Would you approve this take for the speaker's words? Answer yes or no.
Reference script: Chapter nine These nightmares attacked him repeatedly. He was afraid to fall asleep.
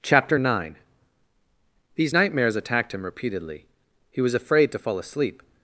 yes